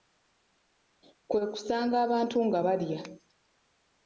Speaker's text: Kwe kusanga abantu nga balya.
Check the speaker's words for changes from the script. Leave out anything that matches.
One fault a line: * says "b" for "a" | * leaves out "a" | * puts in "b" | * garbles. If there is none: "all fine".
all fine